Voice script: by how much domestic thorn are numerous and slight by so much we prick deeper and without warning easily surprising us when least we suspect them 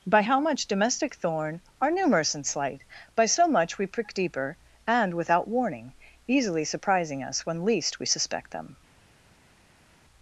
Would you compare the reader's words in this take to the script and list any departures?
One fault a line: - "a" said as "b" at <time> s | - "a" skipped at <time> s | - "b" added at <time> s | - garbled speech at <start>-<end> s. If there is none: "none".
none